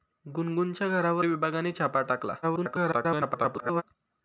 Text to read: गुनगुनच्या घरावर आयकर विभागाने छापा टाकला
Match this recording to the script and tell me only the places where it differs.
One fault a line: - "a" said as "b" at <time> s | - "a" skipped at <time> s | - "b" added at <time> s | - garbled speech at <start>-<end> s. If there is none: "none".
- "आयकर" skipped at 1.2 s
- garbled speech at 2.4-3.8 s